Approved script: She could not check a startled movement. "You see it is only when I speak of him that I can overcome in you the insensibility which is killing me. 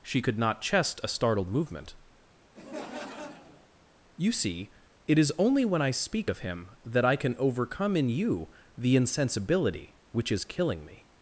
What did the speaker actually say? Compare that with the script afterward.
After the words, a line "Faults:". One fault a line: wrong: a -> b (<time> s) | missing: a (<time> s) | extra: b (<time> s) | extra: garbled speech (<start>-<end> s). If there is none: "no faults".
She could not chest a startled movement. "You see it is only when I speak of him that I can overcome in you the insensibility which is killing me.
Faults:
wrong: check -> chest (0.6 s)